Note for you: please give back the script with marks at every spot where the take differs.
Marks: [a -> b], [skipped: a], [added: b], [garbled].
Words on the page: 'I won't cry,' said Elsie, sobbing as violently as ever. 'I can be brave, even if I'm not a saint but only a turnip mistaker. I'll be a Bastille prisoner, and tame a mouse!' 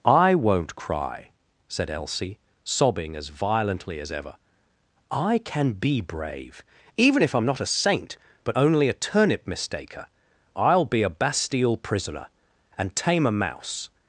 'I won't cry,' said Elsie, sobbing as violently as ever. 'I can be brave, even if I'm not a saint but only a turnip mistaker. I'll be a Bastille prisoner, and tame a mouse!'